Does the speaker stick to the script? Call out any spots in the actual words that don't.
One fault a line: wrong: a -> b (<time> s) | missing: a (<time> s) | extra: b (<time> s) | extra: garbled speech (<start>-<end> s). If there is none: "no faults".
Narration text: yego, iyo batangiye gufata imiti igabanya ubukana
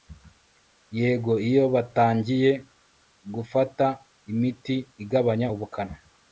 no faults